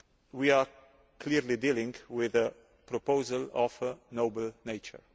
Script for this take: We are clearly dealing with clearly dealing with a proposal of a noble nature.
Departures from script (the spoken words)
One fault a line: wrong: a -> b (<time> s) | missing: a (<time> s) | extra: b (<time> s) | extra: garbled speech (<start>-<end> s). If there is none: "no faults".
missing: clearly dealing with (2.4 s)